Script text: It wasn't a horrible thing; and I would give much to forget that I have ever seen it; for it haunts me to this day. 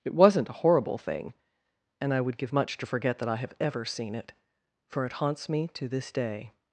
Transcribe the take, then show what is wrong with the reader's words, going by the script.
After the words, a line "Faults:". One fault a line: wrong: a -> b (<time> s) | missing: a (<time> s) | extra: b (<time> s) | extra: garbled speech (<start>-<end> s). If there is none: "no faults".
It wasn't a horrible thing; and I would give much to forget that I have ever seen it; for it haunts me to this day.
Faults:
no faults